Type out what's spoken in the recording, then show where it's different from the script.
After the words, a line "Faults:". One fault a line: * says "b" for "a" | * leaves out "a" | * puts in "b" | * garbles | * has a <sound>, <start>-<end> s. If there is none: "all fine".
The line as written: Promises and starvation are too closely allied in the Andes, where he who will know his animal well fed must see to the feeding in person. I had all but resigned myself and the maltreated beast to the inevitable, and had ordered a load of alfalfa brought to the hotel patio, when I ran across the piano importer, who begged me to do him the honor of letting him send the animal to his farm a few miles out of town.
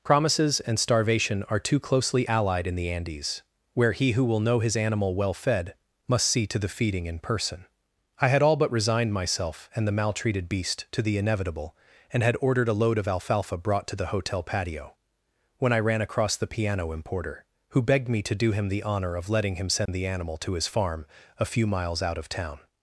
Promises and starvation are too closely allied in the Andes, where he who will know his animal well fed must see to the feeding in person. I had all but resigned myself and the maltreated beast to the inevitable, and had ordered a load of alfalfa brought to the hotel patio, when I ran across the piano importer, who begged me to do him the honor of letting him send the animal to his farm a few miles out of town.
Faults:
* has a dropout, 19.9-19.9 s